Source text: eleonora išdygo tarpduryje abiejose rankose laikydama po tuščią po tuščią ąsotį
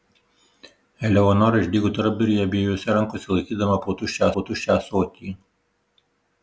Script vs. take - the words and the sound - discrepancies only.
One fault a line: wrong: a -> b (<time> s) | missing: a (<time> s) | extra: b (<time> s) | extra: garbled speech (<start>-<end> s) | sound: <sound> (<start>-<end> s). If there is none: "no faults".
no faults